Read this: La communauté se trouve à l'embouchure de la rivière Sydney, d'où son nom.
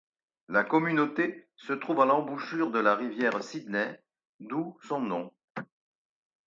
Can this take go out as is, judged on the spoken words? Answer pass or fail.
pass